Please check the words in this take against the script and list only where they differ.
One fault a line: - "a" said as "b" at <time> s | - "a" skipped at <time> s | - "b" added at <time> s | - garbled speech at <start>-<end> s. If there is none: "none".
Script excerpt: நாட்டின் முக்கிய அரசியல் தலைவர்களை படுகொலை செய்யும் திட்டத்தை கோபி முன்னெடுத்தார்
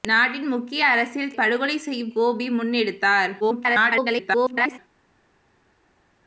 - "தலைவர்களை" skipped at 1.3 s
- "திட்டத்தை" skipped at 2.1 s
- garbled speech at 3.4-4.8 s